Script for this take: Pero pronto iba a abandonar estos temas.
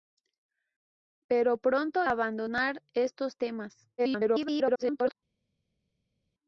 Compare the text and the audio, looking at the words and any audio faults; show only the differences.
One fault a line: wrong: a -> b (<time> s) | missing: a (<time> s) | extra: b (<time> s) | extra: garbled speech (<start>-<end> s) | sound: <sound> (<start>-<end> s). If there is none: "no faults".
missing: iba (2.1 s)
extra: garbled speech (4.0-5.2 s)